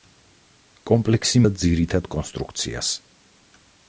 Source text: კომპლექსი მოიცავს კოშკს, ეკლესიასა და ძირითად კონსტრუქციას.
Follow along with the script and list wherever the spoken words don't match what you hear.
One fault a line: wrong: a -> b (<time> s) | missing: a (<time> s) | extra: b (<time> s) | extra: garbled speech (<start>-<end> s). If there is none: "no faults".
missing: მოიცავს კოშკს ეკლესიასა (1.4 s)